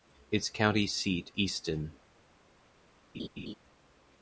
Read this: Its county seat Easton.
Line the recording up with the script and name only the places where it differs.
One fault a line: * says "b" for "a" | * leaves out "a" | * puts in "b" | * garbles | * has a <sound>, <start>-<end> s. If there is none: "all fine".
* has a laugh, 3.1-3.5 s